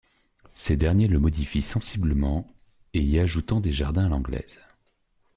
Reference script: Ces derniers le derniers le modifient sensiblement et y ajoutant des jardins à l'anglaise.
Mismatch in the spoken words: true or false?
true